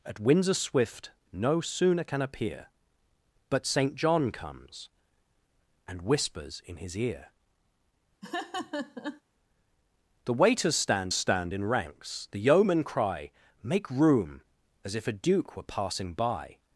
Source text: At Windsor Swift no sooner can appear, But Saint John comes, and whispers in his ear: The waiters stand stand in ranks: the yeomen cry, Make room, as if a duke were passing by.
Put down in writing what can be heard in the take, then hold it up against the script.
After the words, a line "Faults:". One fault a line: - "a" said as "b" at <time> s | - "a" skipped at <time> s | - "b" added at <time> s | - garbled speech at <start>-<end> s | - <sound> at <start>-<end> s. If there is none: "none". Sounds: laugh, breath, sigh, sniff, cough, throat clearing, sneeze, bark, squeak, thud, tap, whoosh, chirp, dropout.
At Windsor Swift no sooner can appear, But Saint John comes, and whispers in his ear: The waiters stand stand in ranks: the yeomen cry, Make room, as if a duke were passing by.
Faults:
- laugh at 8.2-9.2 s